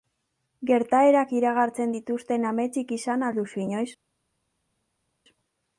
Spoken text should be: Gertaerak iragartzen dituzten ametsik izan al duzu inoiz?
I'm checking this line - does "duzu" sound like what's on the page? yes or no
yes